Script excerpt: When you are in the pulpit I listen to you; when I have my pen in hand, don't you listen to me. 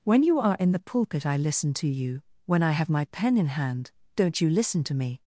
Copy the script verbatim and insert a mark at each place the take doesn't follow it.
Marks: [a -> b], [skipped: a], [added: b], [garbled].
When you are in the pulpit I listen to you; when I have my pen in hand, don't you listen to me.